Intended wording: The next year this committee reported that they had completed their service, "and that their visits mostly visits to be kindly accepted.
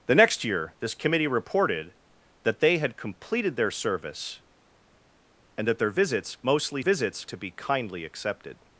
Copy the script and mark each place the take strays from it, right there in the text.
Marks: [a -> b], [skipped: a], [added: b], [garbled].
The next year this committee reported that they had completed their service, "and that their visits mostly visits to be kindly accepted.